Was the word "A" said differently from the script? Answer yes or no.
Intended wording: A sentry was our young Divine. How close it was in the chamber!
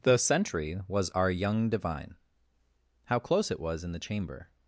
yes